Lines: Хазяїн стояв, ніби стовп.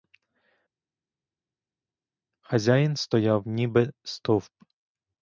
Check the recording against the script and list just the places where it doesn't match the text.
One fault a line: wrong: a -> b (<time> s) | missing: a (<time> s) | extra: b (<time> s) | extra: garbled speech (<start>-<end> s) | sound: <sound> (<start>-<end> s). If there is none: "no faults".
no faults